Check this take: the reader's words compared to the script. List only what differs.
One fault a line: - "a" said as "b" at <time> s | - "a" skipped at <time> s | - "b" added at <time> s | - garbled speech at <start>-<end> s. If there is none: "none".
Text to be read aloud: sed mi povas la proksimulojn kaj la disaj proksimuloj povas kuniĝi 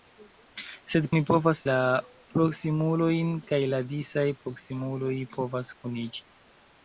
none